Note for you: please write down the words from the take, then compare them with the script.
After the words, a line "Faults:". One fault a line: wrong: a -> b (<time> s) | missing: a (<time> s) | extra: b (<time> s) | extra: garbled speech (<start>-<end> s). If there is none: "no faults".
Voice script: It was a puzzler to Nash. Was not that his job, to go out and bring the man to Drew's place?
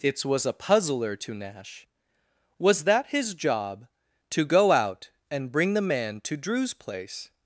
It was a puzzler to Nash. Was that his job, to go out and bring the man to Drew's place?
Faults:
missing: not (2.9 s)